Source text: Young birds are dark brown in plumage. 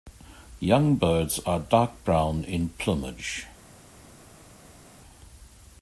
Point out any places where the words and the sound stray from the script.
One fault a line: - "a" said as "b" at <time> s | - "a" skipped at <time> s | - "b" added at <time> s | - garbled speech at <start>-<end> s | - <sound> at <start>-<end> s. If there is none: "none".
none